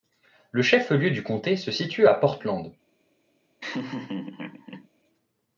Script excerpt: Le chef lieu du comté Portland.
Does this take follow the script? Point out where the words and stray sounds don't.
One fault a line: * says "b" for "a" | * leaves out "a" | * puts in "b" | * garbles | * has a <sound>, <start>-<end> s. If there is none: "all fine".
* puts in "se situe à"
* has a laugh, 3.6-4.9 s